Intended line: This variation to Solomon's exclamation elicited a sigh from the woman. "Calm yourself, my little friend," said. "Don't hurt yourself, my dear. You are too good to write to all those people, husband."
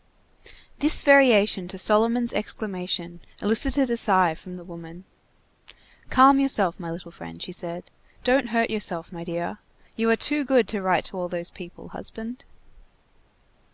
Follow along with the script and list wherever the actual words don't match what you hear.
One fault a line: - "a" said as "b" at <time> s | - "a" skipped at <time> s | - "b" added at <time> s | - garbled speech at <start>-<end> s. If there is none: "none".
- "she" added at 7.4 s